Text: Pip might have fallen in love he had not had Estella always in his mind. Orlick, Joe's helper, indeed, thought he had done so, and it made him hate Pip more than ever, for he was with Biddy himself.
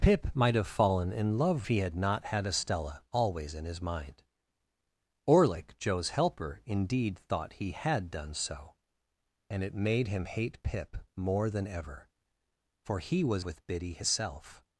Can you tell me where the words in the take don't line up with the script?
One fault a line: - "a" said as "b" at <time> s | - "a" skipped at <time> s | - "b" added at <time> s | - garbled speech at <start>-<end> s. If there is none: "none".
none